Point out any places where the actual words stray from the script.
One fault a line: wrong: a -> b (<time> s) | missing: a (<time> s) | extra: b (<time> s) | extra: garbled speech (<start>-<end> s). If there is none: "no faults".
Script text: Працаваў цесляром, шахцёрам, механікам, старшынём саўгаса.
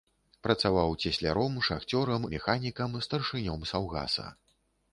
no faults